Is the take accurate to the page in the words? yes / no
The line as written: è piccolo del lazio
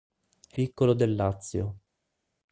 yes